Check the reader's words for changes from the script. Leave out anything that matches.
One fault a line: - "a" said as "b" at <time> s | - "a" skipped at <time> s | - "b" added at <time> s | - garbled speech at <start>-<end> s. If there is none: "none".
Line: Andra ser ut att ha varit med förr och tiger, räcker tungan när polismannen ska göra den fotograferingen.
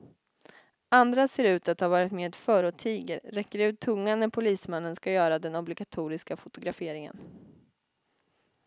- "ut" added at 3.6 s
- "obligatoriska" added at 5.6 s